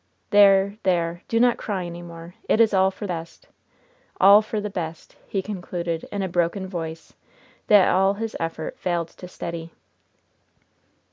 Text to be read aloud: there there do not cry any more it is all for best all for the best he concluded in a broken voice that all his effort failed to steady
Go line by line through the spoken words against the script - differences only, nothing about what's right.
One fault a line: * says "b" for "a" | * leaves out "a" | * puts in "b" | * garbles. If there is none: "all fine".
all fine